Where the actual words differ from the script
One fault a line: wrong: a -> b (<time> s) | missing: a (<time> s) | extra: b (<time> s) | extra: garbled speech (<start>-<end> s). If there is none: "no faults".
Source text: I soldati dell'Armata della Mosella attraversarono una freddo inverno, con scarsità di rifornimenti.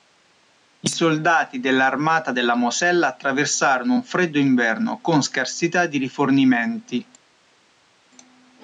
wrong: una -> un (3.9 s)